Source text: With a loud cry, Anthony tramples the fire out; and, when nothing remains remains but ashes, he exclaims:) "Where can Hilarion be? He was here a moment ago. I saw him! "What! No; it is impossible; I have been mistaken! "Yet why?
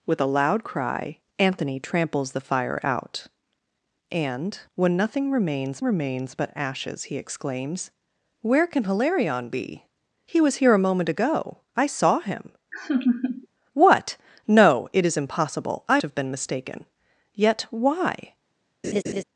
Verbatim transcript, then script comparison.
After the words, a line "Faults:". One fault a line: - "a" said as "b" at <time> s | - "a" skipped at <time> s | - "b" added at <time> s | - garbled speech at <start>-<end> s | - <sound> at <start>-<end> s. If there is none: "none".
With a loud cry, Anthony tramples the fire out; and, when nothing remains remains but ashes, he exclaims:) "Where can Hilarion be? He was here a moment ago. I saw him! "What! No; it is impossible; I have been mistaken! "Yet why?
Faults:
- laugh at 12.7-13.5 s
- laugh at 18.8-19.2 s